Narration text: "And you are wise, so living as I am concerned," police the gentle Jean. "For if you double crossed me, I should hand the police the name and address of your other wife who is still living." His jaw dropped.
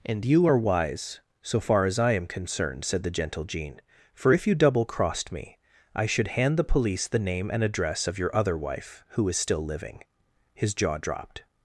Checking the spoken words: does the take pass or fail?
fail